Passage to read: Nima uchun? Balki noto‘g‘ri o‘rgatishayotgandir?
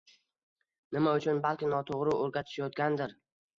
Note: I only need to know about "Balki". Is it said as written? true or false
true